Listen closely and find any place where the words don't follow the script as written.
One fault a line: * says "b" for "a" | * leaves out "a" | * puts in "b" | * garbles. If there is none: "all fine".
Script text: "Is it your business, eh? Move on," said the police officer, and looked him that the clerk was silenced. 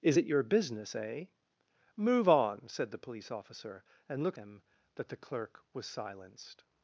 all fine